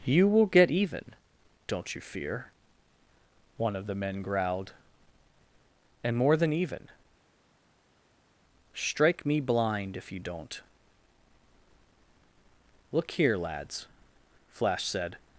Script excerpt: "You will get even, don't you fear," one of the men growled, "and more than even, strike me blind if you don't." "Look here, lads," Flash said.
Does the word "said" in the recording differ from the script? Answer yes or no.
no